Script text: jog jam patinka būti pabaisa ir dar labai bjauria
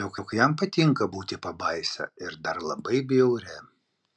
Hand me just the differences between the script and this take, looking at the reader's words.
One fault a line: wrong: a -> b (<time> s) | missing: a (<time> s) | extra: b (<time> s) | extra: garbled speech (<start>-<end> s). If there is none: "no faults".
extra: jog (0.2 s)